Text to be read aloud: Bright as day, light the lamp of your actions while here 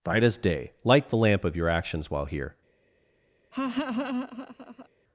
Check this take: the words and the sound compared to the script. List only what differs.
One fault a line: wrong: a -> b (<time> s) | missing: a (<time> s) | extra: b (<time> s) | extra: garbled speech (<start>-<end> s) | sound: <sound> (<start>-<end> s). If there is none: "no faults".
sound: laugh (3.5-4.9 s)